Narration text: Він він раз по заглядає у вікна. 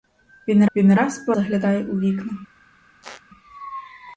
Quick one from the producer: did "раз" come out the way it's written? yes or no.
yes